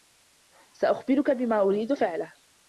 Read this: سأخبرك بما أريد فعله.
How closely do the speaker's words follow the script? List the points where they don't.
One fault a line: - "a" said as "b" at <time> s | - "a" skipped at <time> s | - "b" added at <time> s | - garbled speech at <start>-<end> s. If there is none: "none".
none